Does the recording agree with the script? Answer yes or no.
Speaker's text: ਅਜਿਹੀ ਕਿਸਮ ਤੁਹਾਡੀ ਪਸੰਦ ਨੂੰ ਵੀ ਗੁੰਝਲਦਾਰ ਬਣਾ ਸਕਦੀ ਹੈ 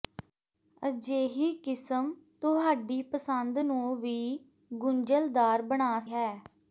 no